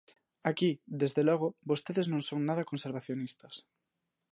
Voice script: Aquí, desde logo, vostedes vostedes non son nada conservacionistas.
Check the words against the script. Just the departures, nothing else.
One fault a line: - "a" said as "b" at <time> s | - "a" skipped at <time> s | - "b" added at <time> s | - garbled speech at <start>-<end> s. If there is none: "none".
- "vostedes" skipped at 2.1 s